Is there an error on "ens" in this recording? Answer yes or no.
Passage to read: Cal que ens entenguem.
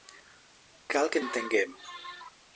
yes